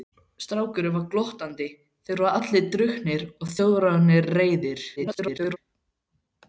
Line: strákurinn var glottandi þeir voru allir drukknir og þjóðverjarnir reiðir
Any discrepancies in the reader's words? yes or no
yes